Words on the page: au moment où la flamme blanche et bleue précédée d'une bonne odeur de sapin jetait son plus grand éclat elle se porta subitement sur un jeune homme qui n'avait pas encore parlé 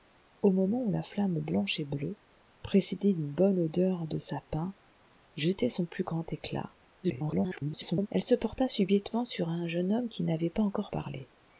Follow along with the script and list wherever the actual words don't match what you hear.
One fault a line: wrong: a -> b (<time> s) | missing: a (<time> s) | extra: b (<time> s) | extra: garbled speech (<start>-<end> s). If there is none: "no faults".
extra: garbled speech (7.0-8.1 s)